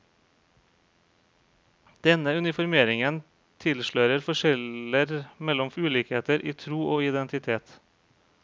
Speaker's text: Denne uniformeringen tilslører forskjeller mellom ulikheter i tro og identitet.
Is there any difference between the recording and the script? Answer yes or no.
no